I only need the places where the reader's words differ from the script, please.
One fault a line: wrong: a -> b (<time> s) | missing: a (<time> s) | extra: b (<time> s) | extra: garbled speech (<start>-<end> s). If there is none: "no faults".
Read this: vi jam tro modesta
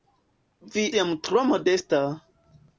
no faults